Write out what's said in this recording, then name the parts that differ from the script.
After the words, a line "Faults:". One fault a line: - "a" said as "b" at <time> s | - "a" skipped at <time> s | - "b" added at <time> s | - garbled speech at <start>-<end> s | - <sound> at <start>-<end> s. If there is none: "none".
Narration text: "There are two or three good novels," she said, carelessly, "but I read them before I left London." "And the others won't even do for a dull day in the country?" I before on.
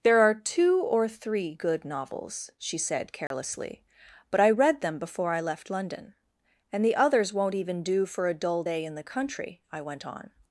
"There are two or three good novels," she said, carelessly, "but I read them before I left London." "And the others won't even do for a dull day in the country?" I went on.
Faults:
- dropout at 3.3-3.3 s
- "before" said as "went" at 9.8 s